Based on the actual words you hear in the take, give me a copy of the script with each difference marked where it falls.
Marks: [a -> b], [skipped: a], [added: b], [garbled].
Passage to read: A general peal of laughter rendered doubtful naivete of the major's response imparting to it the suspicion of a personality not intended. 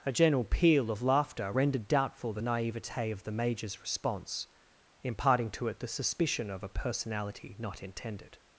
A general peal of laughter rendered doubtful [added: the] naivete of the major's response imparting to it the suspicion of a personality not intended.